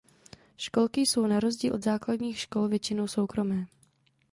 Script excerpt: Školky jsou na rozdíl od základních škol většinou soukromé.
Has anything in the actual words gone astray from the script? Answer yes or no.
no